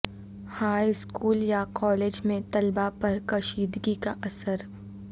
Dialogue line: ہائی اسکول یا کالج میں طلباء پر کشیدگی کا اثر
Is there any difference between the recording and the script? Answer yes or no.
no